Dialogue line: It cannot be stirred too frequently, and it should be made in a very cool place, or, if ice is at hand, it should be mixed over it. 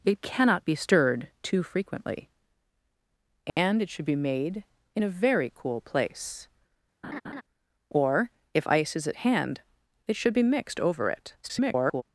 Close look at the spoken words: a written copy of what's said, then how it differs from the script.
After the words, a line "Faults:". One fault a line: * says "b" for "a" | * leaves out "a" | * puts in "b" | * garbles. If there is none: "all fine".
It cannot be stirred too frequently, and it should be made in a very cool place, or, if ice is at hand, it should be mixed over it. [garbled]
Faults:
* garbles